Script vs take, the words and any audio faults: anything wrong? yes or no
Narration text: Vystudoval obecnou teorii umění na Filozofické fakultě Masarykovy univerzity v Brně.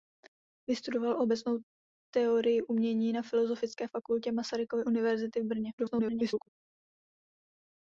yes